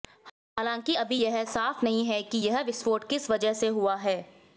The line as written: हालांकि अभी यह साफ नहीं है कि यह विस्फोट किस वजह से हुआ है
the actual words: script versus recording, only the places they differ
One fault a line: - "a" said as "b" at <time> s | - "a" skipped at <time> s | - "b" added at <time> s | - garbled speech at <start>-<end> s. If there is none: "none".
none